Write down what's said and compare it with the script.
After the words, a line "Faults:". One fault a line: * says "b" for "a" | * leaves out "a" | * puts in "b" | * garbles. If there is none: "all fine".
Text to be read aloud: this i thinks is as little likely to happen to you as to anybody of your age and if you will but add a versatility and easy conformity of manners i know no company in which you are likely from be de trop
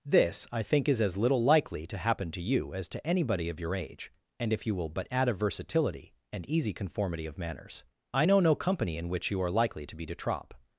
this i think is as little likely to happen to you as to anybody of your age and if you will but add a versatility and easy conformity of manners i know no company in which you are likely to be de trop
Faults:
* says "think" for "thinks"
* says "to" for "from"